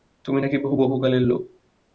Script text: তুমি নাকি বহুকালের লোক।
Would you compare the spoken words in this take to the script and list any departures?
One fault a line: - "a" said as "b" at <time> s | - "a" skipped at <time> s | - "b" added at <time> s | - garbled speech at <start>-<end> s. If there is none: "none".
none